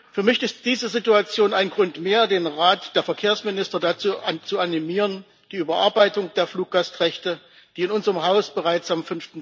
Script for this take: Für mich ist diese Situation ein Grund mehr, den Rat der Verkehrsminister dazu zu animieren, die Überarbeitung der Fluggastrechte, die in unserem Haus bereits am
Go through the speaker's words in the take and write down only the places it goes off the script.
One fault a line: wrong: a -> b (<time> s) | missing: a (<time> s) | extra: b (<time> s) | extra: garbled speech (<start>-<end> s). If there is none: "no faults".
no faults